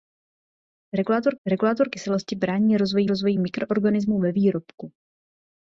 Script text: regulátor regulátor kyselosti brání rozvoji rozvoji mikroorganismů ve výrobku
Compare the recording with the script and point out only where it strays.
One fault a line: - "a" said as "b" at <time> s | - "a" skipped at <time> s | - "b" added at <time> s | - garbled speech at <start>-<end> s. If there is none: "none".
none